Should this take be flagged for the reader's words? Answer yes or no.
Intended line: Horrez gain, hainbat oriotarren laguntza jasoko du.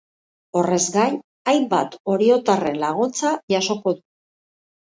no